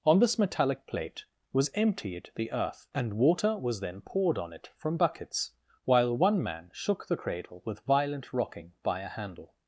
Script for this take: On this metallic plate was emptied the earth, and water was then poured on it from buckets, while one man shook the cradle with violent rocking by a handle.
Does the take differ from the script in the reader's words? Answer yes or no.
no